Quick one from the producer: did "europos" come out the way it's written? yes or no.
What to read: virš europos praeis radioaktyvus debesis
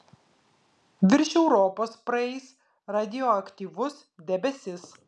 yes